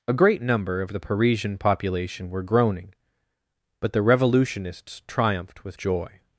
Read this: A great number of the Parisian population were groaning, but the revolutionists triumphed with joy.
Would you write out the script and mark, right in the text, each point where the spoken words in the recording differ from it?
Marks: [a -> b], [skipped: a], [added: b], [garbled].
A great number of the Parisian population were groaning, but the revolutionists triumphed with joy.